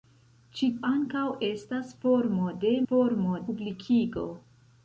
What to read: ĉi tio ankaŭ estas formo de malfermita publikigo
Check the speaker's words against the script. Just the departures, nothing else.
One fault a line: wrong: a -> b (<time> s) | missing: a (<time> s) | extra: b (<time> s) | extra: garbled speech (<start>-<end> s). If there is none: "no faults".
missing: tio (0.7 s)
wrong: malfermita -> formo (2.9 s)